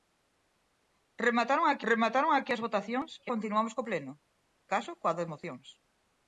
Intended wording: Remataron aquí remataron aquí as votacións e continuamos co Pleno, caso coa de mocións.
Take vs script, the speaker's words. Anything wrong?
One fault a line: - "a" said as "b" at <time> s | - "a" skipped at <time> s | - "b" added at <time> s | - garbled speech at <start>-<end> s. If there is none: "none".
none